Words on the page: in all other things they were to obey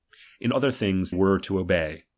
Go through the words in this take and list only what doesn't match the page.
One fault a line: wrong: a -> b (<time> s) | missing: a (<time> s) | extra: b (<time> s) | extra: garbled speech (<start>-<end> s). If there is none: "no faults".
missing: all (0.5 s)
missing: they (1.1 s)